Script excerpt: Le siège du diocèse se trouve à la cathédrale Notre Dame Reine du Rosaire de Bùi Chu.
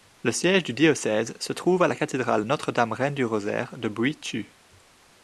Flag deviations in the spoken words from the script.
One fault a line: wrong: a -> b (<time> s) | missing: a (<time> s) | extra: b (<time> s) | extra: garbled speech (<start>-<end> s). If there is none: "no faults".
no faults